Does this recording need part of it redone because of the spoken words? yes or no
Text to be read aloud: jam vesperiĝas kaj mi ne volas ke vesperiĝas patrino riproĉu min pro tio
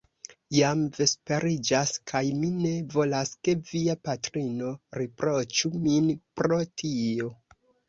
yes